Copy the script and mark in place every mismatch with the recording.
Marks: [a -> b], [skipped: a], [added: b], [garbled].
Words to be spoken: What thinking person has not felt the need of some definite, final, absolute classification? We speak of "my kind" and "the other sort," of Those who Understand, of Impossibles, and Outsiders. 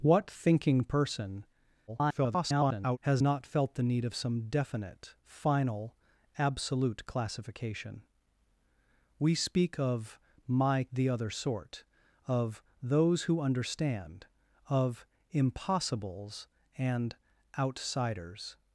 What thinking person [garbled] has not felt the need of some definite, final, absolute classification? We speak of "my [skipped: kind" and] "the other sort," of Those who Understand, of Impossibles, and Outsiders.